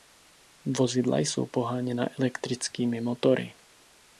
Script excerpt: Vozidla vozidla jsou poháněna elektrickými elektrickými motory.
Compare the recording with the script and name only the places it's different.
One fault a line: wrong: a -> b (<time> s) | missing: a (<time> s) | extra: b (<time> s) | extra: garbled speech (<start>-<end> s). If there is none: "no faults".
missing: vozidla (1.2 s)
missing: elektrickými (3.0 s)